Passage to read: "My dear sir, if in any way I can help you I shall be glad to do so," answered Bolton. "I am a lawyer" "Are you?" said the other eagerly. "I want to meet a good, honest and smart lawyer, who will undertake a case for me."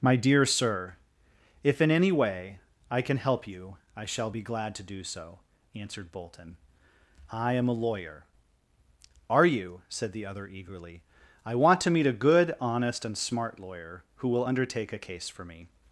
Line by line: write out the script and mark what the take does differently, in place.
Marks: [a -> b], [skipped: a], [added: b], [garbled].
"My dear sir, if in any way I can help you I shall be glad to do so," answered Bolton. "I am a lawyer" "Are you?" said the other eagerly. "I want to meet a good, honest and smart lawyer, who will undertake a case for me."